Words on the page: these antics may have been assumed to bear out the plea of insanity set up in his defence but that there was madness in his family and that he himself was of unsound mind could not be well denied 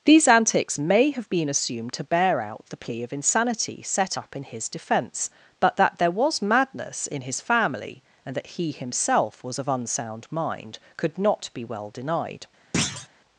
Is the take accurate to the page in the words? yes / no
yes